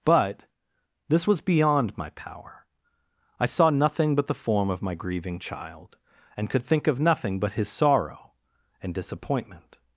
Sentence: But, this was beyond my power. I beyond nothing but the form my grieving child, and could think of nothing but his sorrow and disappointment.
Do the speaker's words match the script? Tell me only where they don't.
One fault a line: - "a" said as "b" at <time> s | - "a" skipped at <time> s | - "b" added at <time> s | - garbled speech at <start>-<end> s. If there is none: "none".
- "beyond" said as "saw" at 3.5 s
- "of" added at 4.7 s